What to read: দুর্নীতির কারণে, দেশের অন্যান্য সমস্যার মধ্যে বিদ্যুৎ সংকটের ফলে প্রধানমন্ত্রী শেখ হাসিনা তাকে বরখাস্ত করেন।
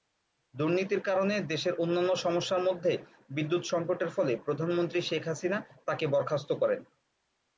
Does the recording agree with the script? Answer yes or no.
yes